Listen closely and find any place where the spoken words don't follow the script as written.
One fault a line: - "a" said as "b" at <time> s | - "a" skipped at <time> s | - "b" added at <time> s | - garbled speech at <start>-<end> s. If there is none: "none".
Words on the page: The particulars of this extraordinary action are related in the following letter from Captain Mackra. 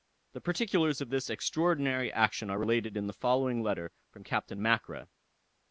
none